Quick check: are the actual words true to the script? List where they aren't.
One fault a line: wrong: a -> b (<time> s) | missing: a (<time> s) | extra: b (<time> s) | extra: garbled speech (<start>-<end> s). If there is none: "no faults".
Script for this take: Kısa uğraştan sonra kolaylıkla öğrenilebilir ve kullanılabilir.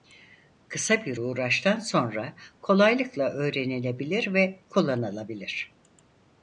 extra: bir (1.1 s)